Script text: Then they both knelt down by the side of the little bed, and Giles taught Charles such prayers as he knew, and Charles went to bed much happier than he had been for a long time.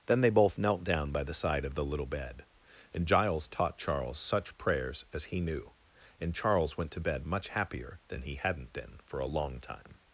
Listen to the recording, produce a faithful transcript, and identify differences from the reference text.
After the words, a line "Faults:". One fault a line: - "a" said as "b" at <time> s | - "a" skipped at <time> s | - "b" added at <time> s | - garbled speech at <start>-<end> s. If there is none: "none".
Then they both knelt down by the side of the little bed, and Giles taught Charles such prayers as he knew, and Charles went to bed much happier than he hadn't been for a long time.
Faults:
- "had" said as "hadn't" at 8.3 s